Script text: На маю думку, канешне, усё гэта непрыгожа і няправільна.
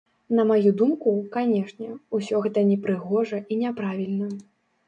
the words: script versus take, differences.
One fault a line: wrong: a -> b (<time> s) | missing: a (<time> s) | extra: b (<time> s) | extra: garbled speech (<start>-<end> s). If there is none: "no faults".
no faults